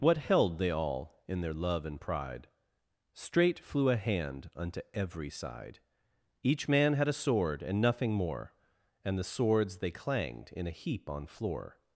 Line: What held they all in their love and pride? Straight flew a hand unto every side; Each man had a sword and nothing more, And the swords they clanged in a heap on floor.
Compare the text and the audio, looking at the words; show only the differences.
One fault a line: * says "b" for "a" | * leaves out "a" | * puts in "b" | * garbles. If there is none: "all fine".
all fine